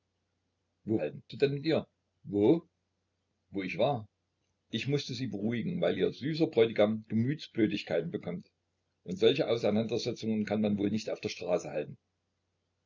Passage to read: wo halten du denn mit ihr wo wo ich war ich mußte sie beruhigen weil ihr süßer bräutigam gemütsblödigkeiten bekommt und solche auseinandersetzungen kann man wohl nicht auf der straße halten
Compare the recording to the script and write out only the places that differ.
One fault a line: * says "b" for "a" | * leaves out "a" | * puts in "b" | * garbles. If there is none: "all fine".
all fine